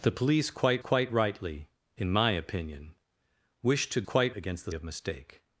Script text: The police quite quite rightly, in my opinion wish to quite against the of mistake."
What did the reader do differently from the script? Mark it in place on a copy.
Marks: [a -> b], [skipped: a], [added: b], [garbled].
The police quite quite rightly, in my opinion wish to quite against the of mistake."